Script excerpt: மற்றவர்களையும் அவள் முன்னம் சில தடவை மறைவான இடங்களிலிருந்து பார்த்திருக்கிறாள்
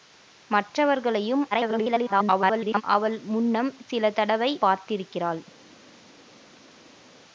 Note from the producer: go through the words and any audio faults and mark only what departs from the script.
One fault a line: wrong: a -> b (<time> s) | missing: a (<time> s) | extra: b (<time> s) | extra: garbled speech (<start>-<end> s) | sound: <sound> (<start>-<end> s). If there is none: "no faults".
extra: garbled speech (1.5-2.8 s)
missing: மறைவான இடங்களிலிருந்து (4.5 s)